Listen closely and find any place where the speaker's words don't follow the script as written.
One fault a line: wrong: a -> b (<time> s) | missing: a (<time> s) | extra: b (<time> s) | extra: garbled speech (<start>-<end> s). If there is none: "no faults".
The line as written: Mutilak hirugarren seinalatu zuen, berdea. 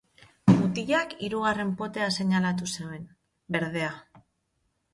extra: potea (1.8 s)